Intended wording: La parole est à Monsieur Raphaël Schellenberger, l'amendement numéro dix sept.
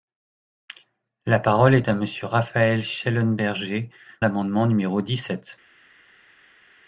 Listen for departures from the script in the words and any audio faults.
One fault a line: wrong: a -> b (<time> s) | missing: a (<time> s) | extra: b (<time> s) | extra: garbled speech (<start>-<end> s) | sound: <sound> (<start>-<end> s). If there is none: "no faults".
no faults